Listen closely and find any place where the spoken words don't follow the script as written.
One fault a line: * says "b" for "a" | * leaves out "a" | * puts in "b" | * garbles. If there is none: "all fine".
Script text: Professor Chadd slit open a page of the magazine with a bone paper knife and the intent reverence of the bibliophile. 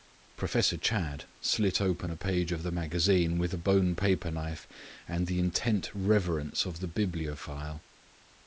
all fine